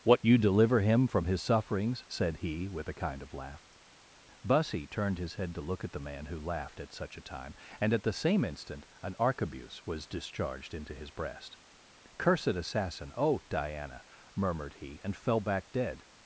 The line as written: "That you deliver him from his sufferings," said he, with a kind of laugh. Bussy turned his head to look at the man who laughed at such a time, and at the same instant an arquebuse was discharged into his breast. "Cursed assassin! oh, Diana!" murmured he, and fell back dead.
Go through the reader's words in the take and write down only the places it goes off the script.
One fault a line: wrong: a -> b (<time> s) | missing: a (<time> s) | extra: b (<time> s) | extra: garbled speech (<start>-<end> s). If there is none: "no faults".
wrong: That -> What (0.0 s)